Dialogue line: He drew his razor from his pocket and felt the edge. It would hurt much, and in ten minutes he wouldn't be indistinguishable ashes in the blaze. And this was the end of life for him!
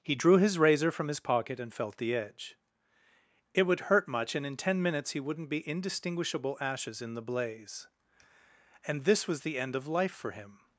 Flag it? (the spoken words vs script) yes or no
no